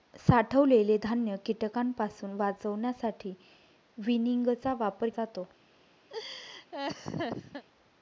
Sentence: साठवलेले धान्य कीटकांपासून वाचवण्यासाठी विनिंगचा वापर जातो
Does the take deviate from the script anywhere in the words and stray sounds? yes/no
yes